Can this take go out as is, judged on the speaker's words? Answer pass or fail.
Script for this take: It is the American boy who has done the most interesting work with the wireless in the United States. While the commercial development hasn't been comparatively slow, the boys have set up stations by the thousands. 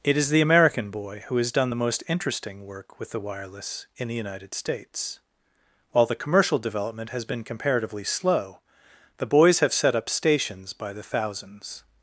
fail